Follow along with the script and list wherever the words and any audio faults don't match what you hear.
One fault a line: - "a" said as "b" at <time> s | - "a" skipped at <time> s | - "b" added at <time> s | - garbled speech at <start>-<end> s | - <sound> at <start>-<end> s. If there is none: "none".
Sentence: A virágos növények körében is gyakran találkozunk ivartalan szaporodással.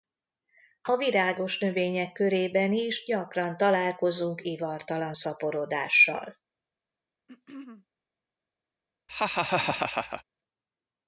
- throat clearing at 7.3-7.9 s
- laugh at 9.1-10.2 s